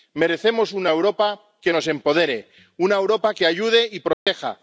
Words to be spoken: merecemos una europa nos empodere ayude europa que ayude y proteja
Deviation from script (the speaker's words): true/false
true